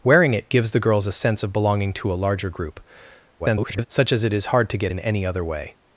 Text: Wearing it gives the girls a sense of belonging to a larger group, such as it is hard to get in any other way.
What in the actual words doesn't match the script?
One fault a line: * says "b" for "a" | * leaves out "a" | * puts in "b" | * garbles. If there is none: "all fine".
* garbles